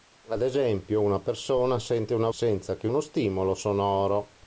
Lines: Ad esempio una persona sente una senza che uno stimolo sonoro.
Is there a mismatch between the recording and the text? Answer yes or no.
no